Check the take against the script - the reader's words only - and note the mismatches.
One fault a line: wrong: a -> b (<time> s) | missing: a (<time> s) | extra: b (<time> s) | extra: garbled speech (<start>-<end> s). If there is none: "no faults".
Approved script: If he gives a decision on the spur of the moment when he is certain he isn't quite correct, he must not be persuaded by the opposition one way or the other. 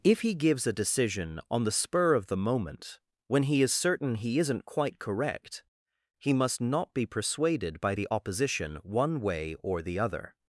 no faults